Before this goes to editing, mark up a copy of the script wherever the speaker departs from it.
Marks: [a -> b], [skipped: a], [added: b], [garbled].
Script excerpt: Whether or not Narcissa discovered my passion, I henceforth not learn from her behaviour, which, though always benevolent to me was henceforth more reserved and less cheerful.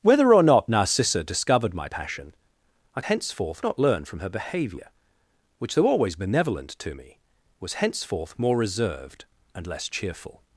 Whether or not Narcissa discovered my passion, I henceforth not learn from her behaviour, which, though always benevolent to me was henceforth more reserved and less cheerful.